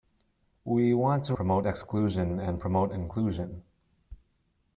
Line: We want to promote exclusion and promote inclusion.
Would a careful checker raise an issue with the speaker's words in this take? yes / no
no